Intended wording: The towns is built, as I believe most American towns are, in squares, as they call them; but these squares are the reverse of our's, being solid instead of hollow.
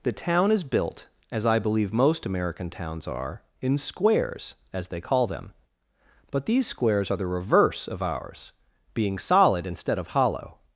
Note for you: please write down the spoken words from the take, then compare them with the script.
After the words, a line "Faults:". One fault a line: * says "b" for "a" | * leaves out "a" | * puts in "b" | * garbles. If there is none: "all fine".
The town is built, as I believe most American towns are, in squares, as they call them; but these squares are the reverse of our's, being solid instead of hollow.
Faults:
* says "town" for "towns"